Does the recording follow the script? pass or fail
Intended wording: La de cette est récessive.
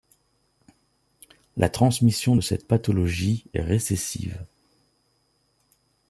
fail